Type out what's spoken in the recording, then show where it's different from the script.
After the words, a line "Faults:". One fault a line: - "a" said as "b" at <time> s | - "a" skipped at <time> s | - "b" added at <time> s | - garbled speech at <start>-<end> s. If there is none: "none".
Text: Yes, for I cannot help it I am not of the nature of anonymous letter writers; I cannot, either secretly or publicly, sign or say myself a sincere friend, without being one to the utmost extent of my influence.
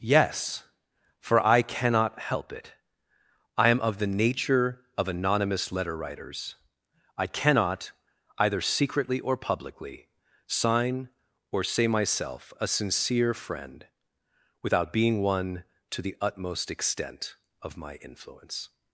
Yes, for I cannot help it I am of the nature of anonymous letter writers; I cannot, either secretly or publicly, sign or say myself a sincere friend, without being one to the utmost extent of my influence.
Faults:
- "not" skipped at 3.8 s